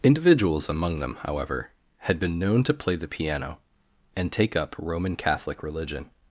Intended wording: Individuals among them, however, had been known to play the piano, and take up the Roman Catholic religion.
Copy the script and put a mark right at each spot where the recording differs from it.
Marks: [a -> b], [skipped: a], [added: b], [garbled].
Individuals among them, however, had been known to play the piano, and take up [skipped: the] Roman Catholic religion.